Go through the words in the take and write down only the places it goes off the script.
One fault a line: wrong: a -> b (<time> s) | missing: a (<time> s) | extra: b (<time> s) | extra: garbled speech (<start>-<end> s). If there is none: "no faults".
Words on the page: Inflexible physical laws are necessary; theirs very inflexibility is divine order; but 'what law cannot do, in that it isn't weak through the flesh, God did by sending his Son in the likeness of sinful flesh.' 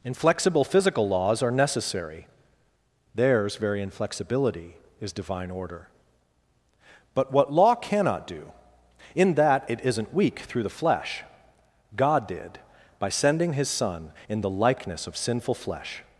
no faults